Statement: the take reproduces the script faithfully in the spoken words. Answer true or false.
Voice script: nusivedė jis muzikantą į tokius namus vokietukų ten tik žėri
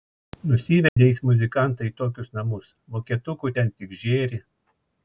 true